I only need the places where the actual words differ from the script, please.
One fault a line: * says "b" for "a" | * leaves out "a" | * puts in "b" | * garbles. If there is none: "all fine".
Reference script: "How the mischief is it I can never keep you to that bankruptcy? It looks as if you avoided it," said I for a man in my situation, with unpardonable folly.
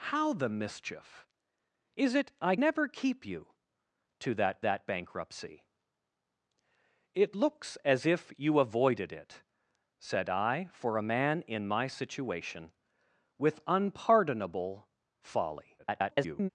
* leaves out "can"
* puts in "that"
* garbles